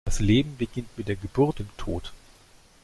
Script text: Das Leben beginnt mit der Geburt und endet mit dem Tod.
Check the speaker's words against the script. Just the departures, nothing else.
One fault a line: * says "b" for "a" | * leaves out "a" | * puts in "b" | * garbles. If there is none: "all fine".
* leaves out "und endet mit"